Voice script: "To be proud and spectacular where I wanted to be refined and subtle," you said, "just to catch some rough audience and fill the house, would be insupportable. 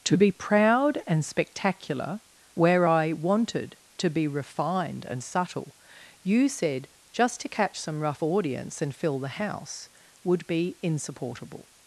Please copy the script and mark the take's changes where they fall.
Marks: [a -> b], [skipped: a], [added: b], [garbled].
"To be proud and spectacular where I wanted to be refined and subtle," you said, "just to catch some rough audience and fill the house, would be insupportable.